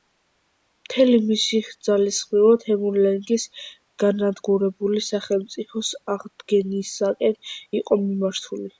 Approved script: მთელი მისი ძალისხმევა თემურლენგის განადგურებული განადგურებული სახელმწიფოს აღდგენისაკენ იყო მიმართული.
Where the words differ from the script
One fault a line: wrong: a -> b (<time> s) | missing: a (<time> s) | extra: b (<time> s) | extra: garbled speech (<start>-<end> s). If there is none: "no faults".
missing: განადგურებული (5.0 s)